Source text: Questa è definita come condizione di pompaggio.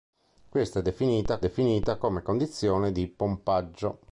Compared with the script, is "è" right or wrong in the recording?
right